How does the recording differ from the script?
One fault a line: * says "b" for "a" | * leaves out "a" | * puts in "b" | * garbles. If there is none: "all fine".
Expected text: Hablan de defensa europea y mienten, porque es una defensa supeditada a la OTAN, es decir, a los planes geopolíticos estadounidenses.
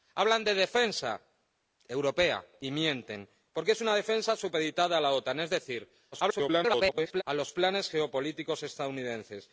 * garbles